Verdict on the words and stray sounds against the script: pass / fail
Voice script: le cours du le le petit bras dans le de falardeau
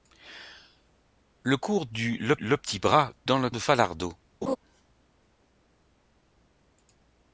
fail